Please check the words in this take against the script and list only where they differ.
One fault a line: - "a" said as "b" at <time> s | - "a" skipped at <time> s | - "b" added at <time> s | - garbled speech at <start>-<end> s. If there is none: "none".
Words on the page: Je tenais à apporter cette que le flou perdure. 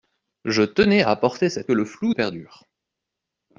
none